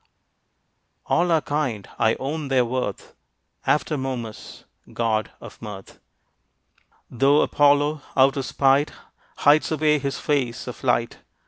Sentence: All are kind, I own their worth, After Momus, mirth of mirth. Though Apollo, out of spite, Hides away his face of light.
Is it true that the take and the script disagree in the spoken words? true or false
true